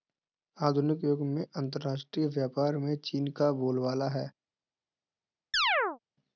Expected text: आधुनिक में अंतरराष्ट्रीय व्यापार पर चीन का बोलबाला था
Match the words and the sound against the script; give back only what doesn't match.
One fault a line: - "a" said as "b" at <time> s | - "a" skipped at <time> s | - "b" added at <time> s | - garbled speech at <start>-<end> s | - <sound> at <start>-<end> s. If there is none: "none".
- "युग" added at 1.0 s
- "पर" said as "में" at 2.8 s
- "था" said as "है" at 4.1 s
- chirp at 5.5-6.0 s